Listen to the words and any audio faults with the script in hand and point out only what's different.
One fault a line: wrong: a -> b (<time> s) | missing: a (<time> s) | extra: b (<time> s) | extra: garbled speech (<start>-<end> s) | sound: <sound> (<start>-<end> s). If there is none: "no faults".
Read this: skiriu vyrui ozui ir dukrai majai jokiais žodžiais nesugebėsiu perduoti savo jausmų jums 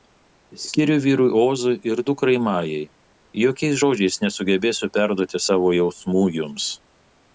no faults